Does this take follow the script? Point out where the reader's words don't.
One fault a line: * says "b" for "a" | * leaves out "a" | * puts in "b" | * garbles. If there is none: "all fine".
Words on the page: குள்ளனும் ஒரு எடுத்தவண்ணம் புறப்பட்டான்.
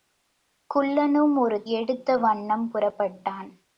all fine